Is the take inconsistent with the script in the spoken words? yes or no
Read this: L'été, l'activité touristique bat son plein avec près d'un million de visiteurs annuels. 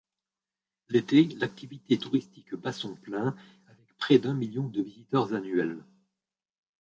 no